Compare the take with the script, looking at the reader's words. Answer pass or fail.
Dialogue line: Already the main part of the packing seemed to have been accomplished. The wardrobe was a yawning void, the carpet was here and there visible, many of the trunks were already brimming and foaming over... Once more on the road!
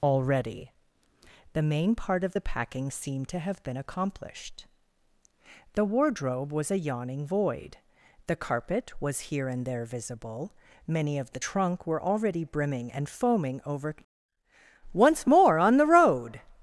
fail